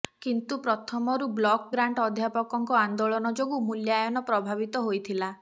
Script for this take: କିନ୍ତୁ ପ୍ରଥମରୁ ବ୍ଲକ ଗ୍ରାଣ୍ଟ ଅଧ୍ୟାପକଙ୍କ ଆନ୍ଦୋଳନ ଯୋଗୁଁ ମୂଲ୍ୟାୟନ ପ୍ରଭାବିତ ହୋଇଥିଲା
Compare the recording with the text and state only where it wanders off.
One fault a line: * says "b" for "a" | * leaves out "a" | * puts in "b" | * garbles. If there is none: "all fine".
all fine